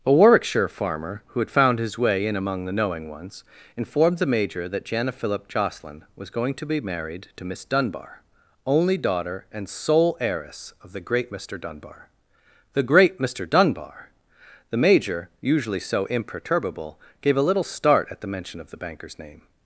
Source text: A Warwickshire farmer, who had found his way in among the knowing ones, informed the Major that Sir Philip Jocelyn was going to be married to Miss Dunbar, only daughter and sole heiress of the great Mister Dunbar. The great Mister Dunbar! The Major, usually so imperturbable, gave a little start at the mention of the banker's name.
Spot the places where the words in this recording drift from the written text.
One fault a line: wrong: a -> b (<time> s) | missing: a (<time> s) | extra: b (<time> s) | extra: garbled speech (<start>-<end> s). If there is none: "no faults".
wrong: Sir -> Jana (4.8 s)